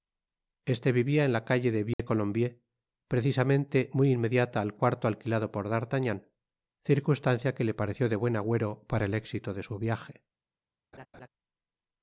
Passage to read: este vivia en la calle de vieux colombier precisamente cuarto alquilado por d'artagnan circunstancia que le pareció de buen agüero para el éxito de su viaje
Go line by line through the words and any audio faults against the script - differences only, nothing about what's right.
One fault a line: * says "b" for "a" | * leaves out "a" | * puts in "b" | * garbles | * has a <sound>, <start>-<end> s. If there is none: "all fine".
* has a dropout, 1.9-2.0 s
* puts in "muy inmediata al"
* has a laugh, 10.9-11.3 s